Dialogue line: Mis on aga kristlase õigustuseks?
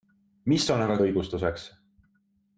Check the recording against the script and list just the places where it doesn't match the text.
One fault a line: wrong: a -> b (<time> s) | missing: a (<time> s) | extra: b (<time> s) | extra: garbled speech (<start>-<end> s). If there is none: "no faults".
missing: kristlase (0.9 s)